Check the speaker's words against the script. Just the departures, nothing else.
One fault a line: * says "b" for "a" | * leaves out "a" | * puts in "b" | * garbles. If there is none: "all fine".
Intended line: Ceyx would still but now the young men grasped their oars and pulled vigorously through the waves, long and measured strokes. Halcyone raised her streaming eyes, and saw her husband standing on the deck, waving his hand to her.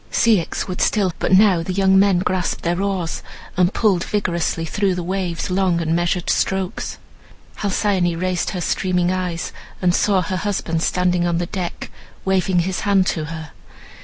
all fine